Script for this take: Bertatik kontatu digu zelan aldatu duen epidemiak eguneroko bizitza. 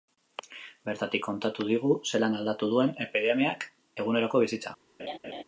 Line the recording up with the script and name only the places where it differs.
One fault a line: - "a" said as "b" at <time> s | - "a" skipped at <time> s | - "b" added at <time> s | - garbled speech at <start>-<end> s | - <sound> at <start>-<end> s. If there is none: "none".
- laugh at 5.0-5.4 s